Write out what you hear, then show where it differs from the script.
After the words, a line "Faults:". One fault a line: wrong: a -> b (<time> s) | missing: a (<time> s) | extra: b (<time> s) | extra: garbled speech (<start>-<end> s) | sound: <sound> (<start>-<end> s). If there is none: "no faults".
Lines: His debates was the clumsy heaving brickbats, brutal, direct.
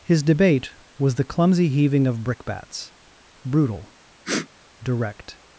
His debate was the clumsy heaving of brickbats, brutal, direct.
Faults:
wrong: debates -> debate (0.2 s)
extra: of (2.1 s)
sound: sniff (4.2-4.5 s)